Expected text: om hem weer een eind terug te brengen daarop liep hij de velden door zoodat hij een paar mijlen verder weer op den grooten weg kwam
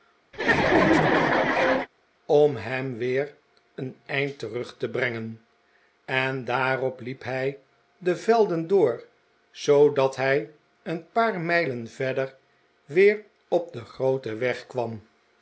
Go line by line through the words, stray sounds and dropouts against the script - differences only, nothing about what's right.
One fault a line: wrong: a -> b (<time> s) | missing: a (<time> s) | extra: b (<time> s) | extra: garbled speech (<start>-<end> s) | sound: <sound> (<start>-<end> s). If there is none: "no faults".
sound: laugh (0.3-1.9 s)
extra: en (6.0 s)